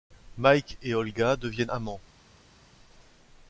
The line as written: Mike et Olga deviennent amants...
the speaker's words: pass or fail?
pass